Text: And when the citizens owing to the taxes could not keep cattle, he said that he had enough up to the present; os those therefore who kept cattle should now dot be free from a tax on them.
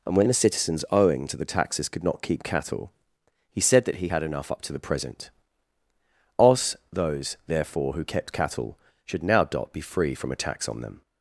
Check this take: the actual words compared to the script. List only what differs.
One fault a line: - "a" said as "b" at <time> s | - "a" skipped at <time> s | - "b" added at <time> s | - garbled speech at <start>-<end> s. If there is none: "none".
none